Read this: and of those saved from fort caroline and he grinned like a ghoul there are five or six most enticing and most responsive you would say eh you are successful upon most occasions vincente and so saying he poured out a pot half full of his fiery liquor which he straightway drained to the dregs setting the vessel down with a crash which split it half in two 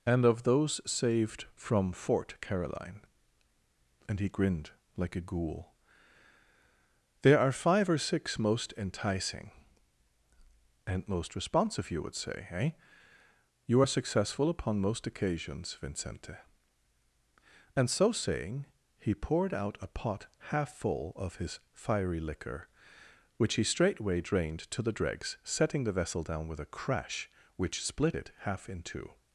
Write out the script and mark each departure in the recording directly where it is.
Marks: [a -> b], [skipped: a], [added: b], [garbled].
and of those saved from fort caroline and he grinned like a ghoul there are five or six most enticing and most responsive you would say eh you are successful upon most occasions vincente and so saying he poured out a pot half full of his fiery liquor which he straightway drained to the dregs setting the vessel down with a crash which split it half in two